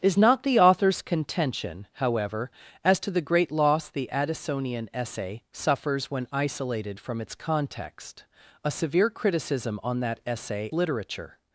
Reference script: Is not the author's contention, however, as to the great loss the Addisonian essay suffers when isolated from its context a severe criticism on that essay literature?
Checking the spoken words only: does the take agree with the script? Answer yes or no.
yes